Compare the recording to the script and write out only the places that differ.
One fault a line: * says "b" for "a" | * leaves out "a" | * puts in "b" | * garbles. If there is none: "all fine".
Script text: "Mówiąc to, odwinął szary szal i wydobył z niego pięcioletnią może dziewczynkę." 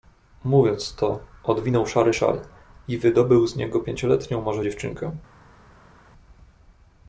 all fine